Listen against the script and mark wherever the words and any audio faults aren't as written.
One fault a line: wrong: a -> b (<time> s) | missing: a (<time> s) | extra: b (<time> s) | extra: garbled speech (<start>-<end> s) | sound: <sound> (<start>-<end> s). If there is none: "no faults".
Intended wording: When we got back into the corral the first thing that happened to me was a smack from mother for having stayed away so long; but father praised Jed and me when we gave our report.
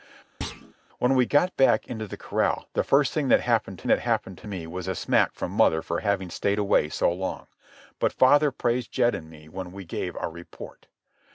sound: thud (0.4-0.7 s)
extra: that happened to (3.9 s)